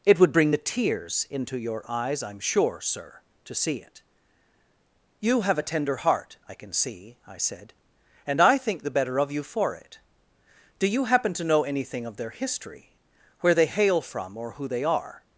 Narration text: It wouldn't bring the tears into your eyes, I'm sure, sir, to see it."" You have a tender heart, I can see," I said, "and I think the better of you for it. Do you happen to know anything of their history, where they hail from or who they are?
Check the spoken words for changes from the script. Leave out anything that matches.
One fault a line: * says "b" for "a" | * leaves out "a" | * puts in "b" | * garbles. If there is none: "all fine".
* says "would" for "wouldn't"